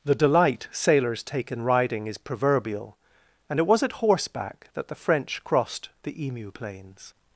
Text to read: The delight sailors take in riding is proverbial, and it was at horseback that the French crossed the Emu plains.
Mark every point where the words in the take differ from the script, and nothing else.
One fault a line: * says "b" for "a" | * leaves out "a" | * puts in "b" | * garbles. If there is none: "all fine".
all fine